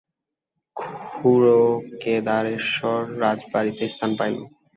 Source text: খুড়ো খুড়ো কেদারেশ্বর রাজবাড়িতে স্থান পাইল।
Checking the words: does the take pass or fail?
fail